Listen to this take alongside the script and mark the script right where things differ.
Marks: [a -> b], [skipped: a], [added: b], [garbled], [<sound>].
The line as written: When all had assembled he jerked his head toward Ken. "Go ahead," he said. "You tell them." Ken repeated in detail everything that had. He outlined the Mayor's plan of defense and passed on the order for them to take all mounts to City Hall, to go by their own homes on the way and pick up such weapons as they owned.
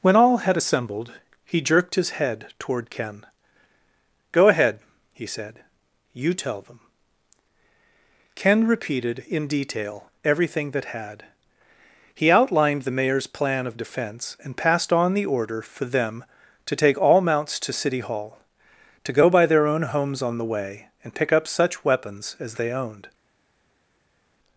When all had assembled he jerked his head toward Ken. "Go ahead," he said. "You tell them." Ken repeated in detail everything that had. He outlined the Mayor's plan of defense and passed on the order for them to take all mounts to City Hall, to go by their own homes on the way and pick up such weapons as they owned.